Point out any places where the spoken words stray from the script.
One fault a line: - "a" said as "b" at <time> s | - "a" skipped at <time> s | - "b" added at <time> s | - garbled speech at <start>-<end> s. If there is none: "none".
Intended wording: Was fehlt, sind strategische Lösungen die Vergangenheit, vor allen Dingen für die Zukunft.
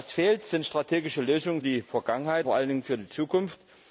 none